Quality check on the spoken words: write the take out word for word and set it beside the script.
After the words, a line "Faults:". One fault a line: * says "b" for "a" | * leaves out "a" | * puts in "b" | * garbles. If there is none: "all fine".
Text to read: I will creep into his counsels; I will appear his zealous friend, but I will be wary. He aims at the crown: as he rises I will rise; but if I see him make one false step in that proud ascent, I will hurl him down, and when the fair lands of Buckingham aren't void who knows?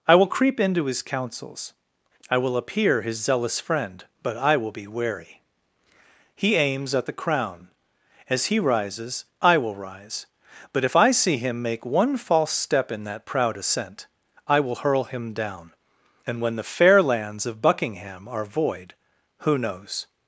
I will creep into his counsels; I will appear his zealous friend, but I will be wary. He aims at the crown: as he rises I will rise; but if I see him make one false step in that proud ascent, I will hurl him down, and when the fair lands of Buckingham are void who knows?
Faults:
* says "are" for "aren't"